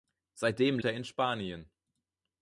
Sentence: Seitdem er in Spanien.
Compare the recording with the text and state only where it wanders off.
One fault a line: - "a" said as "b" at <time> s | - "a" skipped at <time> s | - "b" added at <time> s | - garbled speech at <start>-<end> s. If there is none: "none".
none